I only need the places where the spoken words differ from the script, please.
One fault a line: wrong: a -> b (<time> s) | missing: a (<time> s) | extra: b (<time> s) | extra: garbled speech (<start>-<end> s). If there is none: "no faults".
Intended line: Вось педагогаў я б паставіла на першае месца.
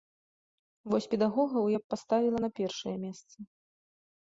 no faults